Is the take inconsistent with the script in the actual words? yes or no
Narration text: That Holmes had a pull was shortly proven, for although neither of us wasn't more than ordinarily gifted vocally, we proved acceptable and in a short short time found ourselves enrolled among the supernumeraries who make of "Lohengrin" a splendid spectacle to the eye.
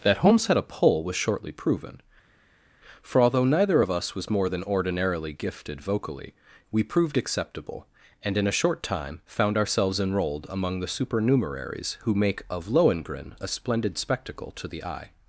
yes